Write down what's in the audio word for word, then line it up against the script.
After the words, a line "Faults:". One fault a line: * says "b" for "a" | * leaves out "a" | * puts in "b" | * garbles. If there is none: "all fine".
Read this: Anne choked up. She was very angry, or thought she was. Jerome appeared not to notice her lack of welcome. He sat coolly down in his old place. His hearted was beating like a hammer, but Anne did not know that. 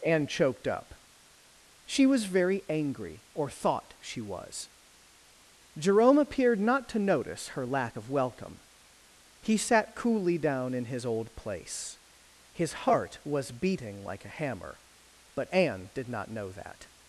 Anne choked up. She was very angry, or thought she was. Jerome appeared not to notice her lack of welcome. He sat coolly down in his old place. His heart was beating like a hammer, but Anne did not know that.
Faults:
* says "heart" for "hearted"